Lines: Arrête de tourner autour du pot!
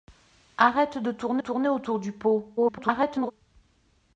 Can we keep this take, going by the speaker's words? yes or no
no